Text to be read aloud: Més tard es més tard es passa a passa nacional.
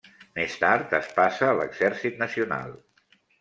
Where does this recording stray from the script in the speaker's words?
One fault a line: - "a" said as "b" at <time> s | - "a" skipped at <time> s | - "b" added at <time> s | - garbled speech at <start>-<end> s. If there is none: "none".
- "més tard es" skipped at 1.1 s
- "passa" said as "l'exèrcit" at 1.6 s